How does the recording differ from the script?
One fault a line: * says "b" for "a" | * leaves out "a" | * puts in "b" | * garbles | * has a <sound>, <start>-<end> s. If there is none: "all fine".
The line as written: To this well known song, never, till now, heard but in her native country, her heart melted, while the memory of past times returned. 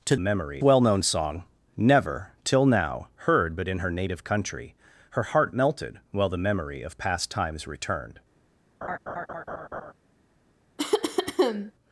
* says "memory" for "this"
* has a laugh, 8.8-9.9 s
* has a cough, 10.8-11.7 s